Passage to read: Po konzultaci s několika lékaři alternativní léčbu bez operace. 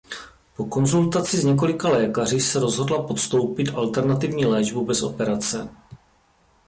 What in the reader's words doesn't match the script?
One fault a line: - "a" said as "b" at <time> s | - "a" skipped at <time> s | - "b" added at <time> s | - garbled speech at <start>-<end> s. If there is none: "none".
- "se rozhodla podstoupit" added at 2.4 s